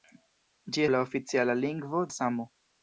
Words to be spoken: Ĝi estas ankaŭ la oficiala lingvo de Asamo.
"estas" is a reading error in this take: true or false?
true